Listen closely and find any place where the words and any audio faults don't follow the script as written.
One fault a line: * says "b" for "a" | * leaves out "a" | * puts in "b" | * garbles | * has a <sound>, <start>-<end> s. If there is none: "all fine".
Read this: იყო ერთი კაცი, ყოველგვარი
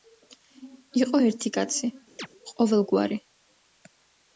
* has a chirp, 2.2-2.3 s